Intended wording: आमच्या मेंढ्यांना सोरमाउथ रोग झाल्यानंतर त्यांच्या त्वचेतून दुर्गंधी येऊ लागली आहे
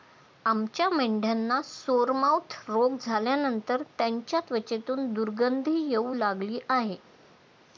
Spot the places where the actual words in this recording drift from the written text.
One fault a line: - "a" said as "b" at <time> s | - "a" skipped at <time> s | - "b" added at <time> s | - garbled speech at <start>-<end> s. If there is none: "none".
none